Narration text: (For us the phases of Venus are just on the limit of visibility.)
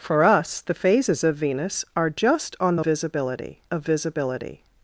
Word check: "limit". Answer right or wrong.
wrong